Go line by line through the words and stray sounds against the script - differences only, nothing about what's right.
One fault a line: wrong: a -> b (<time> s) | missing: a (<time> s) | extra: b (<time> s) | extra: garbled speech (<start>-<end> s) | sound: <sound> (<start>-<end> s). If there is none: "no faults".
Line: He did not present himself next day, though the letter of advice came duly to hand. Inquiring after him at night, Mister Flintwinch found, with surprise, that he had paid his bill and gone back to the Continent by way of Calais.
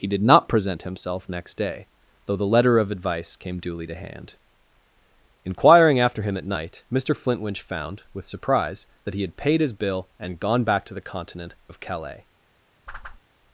missing: by way (11.6 s)
sound: whoosh (12.9-13.2 s)